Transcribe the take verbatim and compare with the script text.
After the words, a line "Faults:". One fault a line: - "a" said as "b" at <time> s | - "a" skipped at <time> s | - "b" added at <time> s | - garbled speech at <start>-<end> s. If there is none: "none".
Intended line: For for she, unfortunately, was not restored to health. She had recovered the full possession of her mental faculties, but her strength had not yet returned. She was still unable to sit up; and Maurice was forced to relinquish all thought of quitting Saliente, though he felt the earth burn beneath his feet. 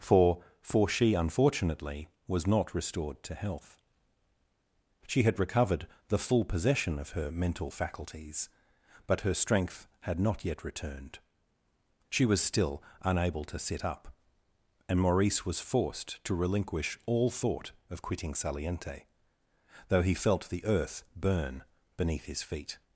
For for she, unfortunately, was not restored to health. She had recovered the full possession of her mental faculties, but her strength had not yet returned. She was still unable to sit up; and Maurice was forced to relinquish all thought of quitting Saliente, though he felt the earth burn beneath his feet.
Faults:
none